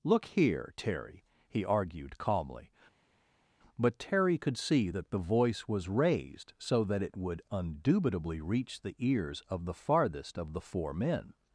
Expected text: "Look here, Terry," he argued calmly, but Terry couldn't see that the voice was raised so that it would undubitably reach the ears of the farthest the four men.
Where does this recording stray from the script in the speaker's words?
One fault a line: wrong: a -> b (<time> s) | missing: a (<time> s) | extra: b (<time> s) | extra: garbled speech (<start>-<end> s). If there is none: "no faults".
wrong: couldn't -> could (4.4 s)
extra: of (10.4 s)